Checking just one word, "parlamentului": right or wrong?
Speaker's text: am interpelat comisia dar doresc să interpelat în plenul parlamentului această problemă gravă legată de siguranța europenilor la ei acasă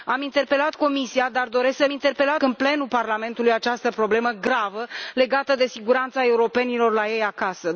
right